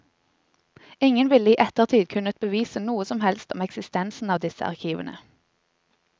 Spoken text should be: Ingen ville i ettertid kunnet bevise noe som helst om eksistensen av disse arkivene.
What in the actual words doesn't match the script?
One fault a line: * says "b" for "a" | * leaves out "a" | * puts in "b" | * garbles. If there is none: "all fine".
all fine